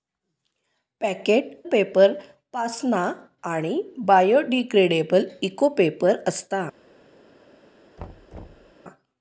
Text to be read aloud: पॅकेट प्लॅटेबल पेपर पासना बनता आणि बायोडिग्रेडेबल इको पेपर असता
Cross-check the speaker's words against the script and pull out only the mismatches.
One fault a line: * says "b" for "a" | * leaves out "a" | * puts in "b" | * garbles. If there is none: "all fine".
* leaves out "प्लॅटेबल"
* leaves out "बनता"